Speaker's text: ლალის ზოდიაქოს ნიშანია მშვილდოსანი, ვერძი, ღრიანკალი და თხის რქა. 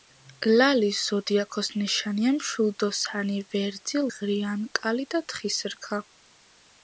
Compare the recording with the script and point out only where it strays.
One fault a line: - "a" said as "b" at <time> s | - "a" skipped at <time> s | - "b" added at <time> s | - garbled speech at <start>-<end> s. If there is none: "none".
none